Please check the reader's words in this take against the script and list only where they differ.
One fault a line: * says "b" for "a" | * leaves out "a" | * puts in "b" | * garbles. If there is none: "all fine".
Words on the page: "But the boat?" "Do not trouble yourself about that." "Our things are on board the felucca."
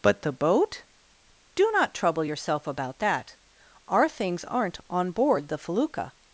* says "aren't" for "are"